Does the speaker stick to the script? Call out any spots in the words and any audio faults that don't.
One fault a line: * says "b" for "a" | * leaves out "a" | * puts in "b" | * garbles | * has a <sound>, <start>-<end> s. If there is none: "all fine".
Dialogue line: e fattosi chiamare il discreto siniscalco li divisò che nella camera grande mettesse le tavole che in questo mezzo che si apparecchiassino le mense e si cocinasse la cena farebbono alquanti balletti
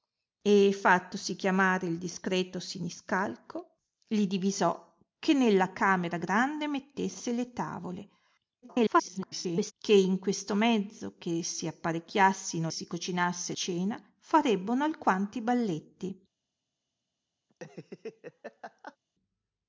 * garbles
* leaves out "le mense"
* leaves out "la"
* has a laugh, 17.5-19.0 s